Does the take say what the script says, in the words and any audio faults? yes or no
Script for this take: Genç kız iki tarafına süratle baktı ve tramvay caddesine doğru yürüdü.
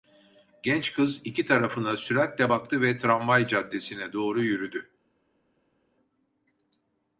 yes